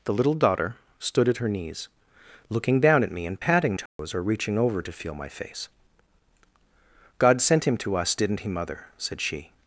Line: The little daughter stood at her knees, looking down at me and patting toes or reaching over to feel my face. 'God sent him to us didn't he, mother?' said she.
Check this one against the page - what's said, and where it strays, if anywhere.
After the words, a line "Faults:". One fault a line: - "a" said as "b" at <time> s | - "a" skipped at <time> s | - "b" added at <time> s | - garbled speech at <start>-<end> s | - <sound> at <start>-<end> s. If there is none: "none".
The little daughter stood at her knees, looking down at me and patting toes or reaching over to feel my face. 'God sent him to us didn't he, mother?' said she.
Faults:
- dropout at 3.9-4.0 s